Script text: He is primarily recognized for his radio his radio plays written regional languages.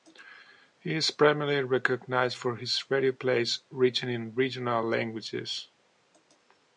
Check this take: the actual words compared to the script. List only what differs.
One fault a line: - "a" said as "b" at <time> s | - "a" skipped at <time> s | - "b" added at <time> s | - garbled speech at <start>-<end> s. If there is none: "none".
- "his radio" skipped at 3.1 s
- "in" added at 4.1 s